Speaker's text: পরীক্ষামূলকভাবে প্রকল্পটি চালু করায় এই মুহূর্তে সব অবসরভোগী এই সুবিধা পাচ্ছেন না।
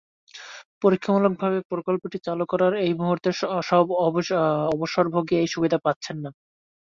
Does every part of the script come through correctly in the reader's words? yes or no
yes